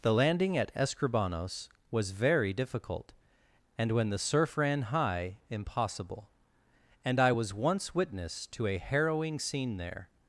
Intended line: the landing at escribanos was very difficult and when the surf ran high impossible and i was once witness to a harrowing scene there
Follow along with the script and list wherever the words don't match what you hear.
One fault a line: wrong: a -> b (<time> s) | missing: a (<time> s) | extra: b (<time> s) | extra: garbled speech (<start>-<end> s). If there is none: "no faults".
no faults